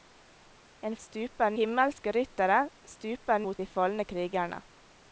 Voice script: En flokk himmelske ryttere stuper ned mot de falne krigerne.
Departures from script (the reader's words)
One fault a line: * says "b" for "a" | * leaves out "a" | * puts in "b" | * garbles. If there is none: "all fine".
* says "stuper" for "flokk"
* leaves out "ned"